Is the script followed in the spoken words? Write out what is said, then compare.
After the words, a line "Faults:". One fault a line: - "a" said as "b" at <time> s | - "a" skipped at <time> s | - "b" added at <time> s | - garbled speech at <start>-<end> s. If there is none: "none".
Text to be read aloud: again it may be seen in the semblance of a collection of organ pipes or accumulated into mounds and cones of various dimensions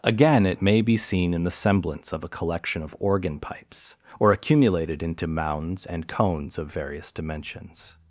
again it may be seen in the semblance of a collection of organ pipes or accumulated into mounds and cones of various dimensions
Faults:
none